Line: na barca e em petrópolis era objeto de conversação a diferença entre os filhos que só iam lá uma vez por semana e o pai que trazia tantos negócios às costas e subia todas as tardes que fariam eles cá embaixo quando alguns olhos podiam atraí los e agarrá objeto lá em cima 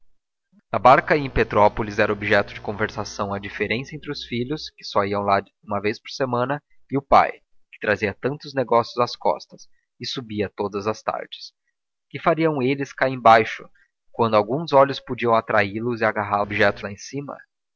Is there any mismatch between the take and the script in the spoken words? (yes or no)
no